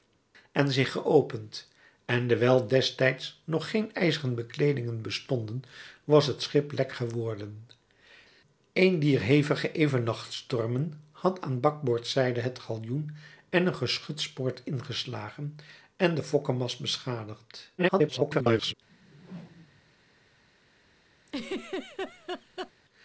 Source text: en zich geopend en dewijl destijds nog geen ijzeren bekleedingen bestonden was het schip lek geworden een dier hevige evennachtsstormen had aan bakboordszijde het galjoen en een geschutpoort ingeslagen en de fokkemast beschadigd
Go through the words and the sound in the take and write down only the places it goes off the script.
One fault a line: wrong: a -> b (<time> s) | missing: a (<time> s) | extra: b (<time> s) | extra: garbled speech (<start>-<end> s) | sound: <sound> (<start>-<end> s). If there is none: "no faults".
extra: garbled speech (17.8-18.7 s)
sound: whoosh (18.9-19.9 s)
sound: laugh (21.3-22.7 s)